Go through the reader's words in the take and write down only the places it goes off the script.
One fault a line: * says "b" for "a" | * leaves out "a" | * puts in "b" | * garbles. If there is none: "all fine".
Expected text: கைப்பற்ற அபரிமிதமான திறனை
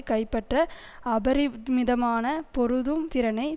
* puts in "பொருதும்"